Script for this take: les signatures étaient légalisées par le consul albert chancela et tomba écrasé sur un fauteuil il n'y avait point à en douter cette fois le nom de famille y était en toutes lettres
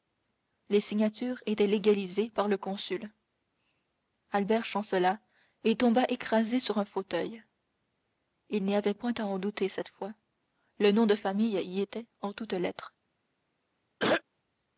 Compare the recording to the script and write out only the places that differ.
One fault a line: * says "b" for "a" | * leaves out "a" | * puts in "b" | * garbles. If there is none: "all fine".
all fine